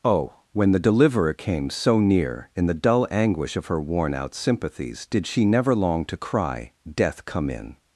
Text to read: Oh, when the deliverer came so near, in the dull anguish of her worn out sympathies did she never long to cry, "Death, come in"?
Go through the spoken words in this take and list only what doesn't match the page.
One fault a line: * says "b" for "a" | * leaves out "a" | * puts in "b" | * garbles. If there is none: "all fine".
all fine